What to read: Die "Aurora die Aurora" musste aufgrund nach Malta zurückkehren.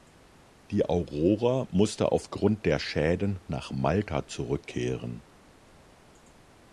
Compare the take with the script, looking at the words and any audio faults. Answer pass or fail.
fail